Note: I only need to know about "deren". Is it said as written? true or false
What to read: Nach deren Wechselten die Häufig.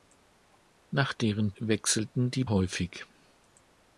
true